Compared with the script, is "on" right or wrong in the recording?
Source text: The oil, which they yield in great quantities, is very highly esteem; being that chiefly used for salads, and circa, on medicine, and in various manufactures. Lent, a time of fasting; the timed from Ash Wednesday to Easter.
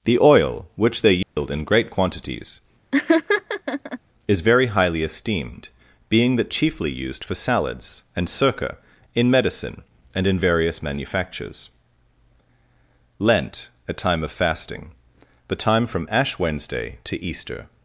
wrong